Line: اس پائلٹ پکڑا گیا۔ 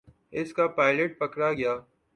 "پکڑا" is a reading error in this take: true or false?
false